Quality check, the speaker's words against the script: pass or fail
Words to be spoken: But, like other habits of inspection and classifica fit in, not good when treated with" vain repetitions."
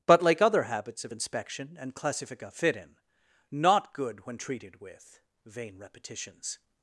pass